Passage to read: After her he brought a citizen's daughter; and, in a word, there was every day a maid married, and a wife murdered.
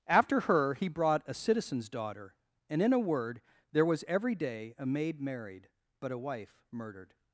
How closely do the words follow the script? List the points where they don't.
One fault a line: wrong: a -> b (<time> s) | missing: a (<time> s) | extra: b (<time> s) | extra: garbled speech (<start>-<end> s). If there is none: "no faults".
wrong: and -> but (6.0 s)